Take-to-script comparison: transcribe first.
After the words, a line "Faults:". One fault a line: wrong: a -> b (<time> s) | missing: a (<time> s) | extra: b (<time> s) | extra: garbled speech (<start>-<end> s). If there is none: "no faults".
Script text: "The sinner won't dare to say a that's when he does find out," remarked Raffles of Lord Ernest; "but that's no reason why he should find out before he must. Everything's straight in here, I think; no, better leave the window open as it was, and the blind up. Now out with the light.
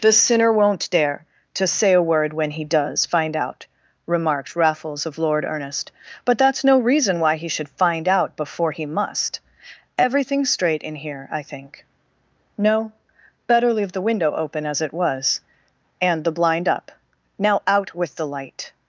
"The sinner won't dare to say a word when he does find out," remarked Raffles of Lord Ernest; "but that's no reason why he should find out before he must. Everything's straight in here, I think; no, better leave the window open as it was, and the blind up. Now out with the light.
Faults:
wrong: that's -> word (2.0 s)